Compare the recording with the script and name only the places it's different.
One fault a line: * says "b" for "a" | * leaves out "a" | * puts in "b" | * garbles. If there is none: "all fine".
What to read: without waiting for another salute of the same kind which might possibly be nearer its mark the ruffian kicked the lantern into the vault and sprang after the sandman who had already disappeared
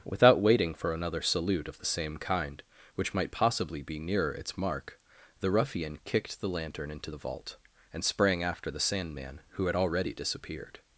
all fine